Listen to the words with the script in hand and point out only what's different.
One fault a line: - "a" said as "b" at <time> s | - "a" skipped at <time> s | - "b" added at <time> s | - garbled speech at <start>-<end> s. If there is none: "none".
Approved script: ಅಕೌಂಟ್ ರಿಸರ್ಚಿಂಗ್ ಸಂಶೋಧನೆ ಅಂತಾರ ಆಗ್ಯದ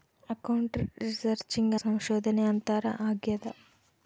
none